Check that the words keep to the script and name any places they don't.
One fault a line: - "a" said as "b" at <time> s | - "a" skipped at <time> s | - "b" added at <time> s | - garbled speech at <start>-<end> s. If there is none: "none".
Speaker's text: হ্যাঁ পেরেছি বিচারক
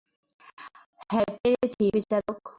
none